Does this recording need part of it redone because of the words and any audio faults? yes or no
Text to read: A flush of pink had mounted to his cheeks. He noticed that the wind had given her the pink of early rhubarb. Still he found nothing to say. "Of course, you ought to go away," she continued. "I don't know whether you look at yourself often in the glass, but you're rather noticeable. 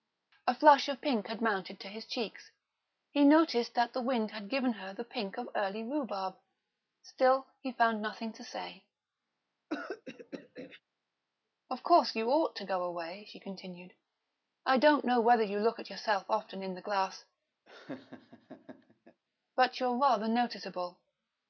yes